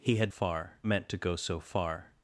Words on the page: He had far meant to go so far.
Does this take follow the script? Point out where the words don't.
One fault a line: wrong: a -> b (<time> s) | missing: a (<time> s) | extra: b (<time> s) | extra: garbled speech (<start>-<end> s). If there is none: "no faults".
no faults